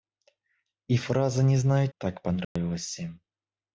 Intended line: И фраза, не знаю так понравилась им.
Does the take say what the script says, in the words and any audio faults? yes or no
no